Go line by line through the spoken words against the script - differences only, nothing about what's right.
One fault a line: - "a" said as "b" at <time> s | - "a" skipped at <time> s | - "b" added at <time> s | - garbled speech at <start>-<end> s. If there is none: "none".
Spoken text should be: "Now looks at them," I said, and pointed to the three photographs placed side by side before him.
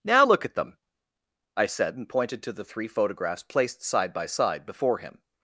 - "looks" said as "look" at 0.2 s